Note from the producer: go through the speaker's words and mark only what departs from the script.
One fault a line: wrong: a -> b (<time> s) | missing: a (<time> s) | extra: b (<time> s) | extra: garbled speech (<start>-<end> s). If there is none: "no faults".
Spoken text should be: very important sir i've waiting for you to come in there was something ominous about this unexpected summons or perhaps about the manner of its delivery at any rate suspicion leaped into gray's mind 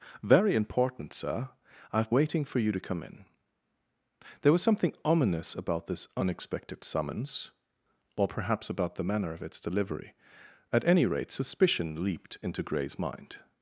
no faults